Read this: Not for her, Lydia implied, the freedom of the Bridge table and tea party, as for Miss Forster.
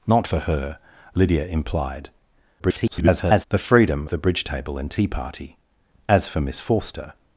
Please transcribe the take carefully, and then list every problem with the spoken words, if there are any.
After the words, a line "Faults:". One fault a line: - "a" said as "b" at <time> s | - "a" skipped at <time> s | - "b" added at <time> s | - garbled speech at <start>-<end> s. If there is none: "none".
Not for her, Lydia implied, [garbled] the freedom the Bridge table and tea party, as for Miss Forster.
Faults:
- garbled speech at 2.6-3.4 s
- "of" skipped at 4.1 s